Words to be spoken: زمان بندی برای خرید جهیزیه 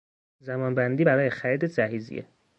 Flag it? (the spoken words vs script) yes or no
no